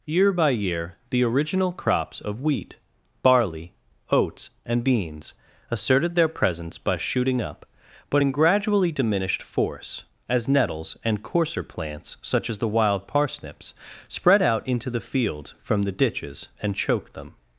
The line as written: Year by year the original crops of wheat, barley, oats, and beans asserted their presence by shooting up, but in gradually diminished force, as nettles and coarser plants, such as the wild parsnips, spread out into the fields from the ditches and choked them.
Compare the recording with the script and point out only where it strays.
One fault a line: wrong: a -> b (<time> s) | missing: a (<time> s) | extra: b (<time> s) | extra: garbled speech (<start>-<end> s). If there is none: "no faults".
no faults